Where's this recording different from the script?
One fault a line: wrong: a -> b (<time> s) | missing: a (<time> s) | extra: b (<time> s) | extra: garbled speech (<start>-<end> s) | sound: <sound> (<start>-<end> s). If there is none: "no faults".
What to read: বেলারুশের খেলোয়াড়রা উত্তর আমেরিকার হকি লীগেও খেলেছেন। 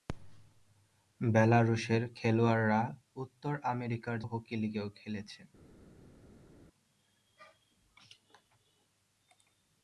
no faults